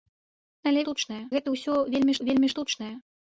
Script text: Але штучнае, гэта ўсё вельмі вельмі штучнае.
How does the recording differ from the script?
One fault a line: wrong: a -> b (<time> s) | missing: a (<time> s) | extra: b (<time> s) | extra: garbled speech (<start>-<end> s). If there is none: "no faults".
no faults